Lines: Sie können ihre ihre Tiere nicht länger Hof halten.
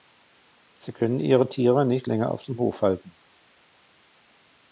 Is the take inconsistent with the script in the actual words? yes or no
yes